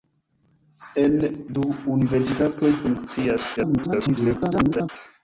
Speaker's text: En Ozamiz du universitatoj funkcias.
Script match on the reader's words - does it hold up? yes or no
no